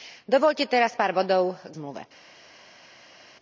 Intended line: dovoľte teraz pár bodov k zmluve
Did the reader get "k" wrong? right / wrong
right